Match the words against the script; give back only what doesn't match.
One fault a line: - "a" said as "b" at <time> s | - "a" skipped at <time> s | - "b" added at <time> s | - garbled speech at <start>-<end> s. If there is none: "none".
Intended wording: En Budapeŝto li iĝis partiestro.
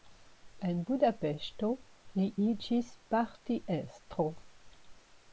none